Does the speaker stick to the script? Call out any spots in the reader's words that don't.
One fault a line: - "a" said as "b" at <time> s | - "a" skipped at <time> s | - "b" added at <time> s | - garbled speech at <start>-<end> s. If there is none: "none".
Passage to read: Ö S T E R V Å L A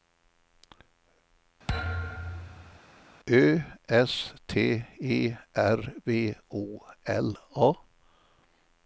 none